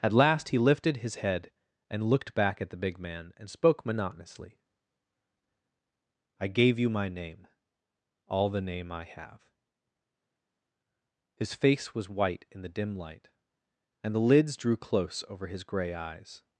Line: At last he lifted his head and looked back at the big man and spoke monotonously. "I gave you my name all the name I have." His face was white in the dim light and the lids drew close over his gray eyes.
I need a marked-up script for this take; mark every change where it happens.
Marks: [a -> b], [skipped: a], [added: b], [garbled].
At last he lifted his head and looked back at the big man and spoke monotonously. "I gave you my name all the name I have." His face was white in the dim light and the lids drew close over his gray eyes.